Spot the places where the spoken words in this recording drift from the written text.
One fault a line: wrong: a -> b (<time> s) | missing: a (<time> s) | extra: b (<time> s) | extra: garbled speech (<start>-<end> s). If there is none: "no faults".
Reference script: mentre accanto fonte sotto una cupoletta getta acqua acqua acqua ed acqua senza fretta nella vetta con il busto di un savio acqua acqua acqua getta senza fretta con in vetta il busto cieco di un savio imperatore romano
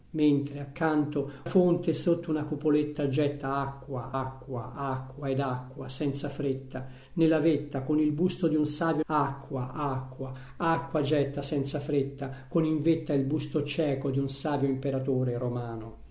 no faults